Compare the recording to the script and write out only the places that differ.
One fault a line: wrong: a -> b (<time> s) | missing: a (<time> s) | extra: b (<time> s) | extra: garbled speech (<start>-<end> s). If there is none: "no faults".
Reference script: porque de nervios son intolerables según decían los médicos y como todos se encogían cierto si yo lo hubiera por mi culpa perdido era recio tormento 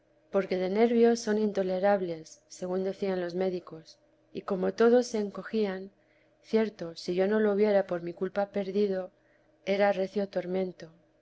extra: no (7.3 s)